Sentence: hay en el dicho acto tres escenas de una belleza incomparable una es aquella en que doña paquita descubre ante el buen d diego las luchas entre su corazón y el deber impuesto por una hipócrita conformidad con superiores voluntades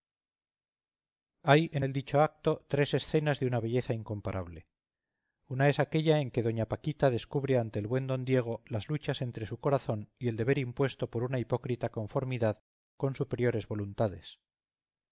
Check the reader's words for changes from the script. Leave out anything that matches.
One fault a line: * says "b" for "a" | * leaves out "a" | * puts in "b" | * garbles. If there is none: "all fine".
all fine